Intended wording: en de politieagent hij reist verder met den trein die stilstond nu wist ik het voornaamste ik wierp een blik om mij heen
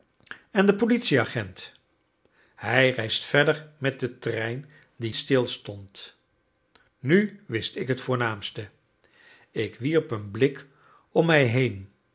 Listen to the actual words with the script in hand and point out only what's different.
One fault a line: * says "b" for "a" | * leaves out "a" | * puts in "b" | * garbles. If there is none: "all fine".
all fine